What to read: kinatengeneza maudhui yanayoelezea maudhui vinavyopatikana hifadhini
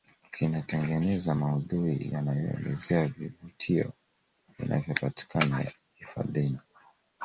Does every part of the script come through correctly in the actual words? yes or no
no